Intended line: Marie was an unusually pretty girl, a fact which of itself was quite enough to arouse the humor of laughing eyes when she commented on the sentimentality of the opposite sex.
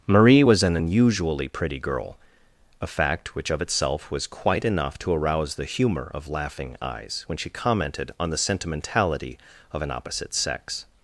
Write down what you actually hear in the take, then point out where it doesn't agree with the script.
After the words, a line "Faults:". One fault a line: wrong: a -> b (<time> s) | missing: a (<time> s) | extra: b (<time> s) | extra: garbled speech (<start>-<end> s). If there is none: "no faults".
Marie was an unusually pretty girl, a fact which of itself was quite enough to arouse the humor of laughing eyes when she commented on the sentimentality of an opposite sex.
Faults:
wrong: the -> an (9.8 s)